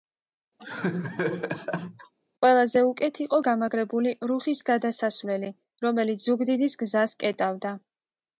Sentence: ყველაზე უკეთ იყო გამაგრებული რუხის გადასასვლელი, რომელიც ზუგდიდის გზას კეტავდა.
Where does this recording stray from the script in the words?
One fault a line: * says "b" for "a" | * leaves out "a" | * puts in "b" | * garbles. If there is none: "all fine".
all fine